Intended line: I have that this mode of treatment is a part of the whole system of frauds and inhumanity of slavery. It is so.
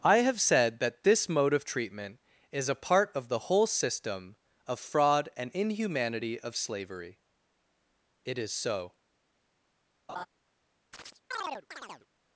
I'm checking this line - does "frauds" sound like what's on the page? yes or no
no